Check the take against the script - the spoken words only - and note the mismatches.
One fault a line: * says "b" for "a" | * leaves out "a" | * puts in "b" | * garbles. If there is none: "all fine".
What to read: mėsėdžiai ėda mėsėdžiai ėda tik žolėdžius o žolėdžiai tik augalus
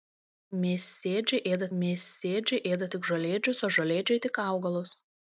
all fine